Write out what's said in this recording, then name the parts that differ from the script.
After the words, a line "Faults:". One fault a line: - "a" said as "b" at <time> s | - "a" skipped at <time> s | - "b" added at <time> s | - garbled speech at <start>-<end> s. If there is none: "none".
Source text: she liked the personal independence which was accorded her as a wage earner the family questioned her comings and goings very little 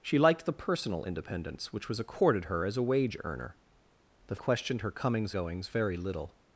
she liked the personal independence which was accorded her as a wage earner the questioned her comings goings very little
Faults:
- "family" skipped at 4.4 s
- "and" skipped at 5.3 s